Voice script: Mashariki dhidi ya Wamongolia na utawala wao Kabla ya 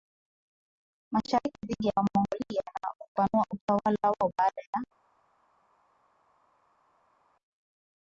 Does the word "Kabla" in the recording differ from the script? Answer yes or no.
yes